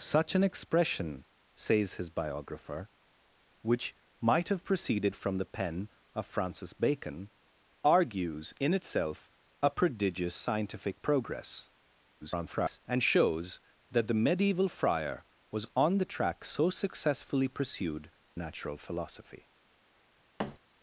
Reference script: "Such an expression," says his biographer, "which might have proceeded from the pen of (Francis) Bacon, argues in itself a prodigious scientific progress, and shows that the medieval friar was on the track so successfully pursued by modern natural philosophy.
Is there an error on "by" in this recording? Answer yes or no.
yes